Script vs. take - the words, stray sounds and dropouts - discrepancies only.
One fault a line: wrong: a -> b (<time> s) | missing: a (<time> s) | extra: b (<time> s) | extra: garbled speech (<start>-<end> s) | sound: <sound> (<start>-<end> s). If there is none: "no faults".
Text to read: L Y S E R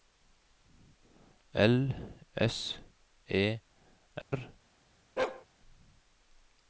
missing: Y (1.9 s)
sound: dropout (4.2-4.3 s)
sound: bark (5.2-5.5 s)